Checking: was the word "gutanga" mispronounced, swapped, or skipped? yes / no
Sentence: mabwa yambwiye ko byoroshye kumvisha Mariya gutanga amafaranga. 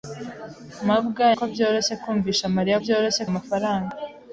yes